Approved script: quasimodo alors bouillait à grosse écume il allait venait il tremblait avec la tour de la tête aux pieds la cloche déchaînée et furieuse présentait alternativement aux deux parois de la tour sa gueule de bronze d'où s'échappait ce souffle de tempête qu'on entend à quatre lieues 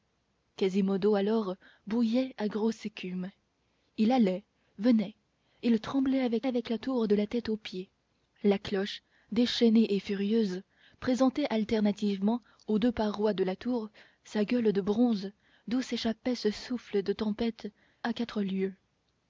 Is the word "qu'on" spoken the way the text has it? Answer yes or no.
no